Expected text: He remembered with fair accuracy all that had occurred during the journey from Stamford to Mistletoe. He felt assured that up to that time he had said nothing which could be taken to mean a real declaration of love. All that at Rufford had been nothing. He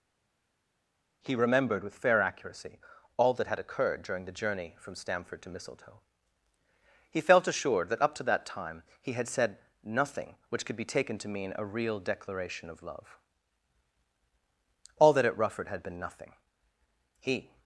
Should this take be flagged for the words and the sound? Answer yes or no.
no